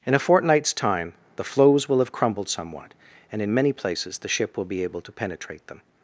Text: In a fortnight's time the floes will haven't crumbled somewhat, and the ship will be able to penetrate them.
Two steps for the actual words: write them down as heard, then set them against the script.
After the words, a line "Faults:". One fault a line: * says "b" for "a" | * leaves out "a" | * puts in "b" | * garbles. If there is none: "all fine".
In a fortnight's time the floes will have crumbled somewhat, and in many places the ship will be able to penetrate them.
Faults:
* says "have" for "haven't"
* puts in "in many places"